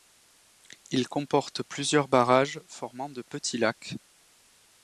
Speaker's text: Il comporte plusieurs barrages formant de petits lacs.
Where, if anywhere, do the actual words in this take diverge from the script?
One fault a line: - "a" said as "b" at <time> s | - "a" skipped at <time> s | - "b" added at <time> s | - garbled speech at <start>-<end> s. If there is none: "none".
none